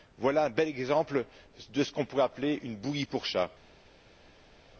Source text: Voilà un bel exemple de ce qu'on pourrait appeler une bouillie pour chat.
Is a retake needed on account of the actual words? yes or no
no